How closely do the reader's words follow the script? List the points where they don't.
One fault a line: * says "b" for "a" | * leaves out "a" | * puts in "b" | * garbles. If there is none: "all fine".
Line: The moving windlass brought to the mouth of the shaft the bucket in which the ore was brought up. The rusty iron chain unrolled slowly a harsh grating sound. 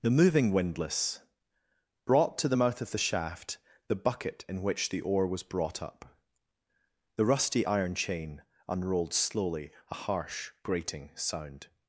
all fine